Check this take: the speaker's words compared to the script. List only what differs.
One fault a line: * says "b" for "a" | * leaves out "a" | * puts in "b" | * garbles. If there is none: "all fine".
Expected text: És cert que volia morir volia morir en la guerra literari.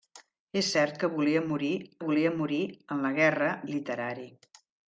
all fine